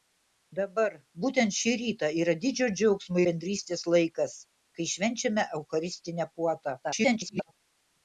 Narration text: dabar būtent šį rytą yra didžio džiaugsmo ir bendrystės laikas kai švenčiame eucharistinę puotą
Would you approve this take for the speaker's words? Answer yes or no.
no